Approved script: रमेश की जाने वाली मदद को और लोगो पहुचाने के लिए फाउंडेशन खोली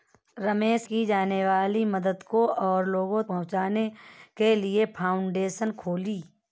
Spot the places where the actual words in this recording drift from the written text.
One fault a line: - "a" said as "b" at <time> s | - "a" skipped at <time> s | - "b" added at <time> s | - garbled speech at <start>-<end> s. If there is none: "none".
none